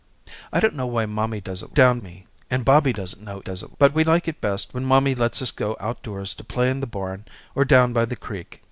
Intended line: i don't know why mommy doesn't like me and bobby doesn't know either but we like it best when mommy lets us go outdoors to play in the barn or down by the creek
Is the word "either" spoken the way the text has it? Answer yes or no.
no